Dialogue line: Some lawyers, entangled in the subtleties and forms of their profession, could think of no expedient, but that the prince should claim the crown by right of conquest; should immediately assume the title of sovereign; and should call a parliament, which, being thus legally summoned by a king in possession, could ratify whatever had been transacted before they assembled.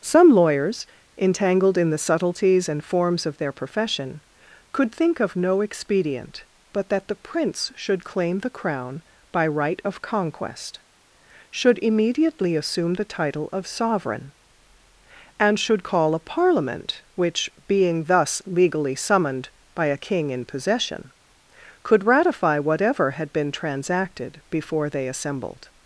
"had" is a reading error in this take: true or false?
false